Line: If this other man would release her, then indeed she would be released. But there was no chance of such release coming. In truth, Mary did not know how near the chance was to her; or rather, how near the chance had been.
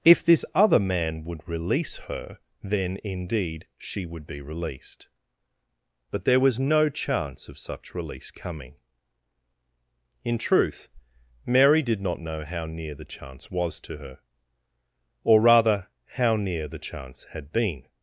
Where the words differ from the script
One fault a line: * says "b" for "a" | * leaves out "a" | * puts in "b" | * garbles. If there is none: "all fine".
all fine